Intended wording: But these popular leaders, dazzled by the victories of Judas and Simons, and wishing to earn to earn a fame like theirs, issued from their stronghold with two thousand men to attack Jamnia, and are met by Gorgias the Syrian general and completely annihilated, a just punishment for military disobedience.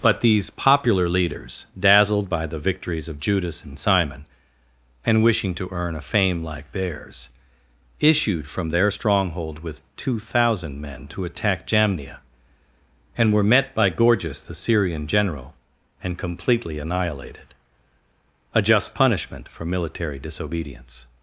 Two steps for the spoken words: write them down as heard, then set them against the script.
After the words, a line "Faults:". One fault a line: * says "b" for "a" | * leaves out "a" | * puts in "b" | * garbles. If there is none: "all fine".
But these popular leaders, dazzled by the victories of Judas and Simon, and wishing to earn a fame like theirs, issued from their stronghold with two thousand men to attack Jamnia, and were met by Gorgias the Syrian general and completely annihilated, a just punishment for military disobedience.
Faults:
* says "Simon" for "Simons"
* leaves out "to earn"
* says "were" for "are"